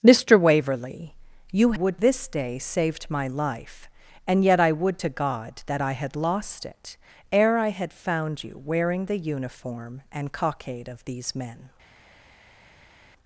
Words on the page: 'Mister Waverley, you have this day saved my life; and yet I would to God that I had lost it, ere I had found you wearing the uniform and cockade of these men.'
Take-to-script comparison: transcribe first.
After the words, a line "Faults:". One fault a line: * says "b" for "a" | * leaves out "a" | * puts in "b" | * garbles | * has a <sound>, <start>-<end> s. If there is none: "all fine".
'Mister Waverley, you would this day saved my life; and yet I would to God that I had lost it, ere I had found you wearing the uniform and cockade of these men.'
Faults:
* says "would" for "have"